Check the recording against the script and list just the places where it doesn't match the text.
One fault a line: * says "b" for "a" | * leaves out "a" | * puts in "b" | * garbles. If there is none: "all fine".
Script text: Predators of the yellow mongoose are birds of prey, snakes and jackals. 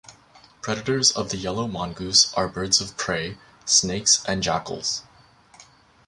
all fine